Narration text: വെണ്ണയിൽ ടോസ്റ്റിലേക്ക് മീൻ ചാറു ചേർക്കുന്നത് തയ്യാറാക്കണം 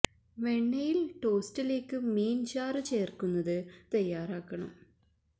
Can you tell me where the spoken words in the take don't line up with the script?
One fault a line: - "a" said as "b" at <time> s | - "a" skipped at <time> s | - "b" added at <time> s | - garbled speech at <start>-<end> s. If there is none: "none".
none